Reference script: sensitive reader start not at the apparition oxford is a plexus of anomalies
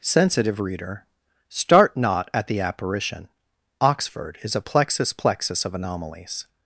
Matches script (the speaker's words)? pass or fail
fail